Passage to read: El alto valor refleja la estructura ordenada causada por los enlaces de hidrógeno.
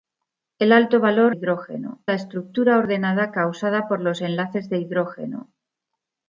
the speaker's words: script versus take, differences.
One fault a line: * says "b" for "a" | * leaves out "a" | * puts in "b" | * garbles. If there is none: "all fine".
* says "hidrógeno" for "refleja"